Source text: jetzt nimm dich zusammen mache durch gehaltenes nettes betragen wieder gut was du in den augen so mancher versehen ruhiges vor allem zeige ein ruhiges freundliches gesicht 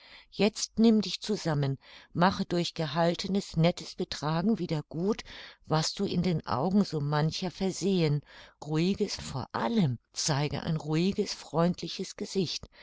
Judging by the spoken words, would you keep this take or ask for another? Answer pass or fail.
pass